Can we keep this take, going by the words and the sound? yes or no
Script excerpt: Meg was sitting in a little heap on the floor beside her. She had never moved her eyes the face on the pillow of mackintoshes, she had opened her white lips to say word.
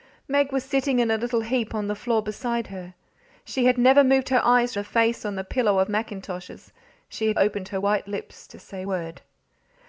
yes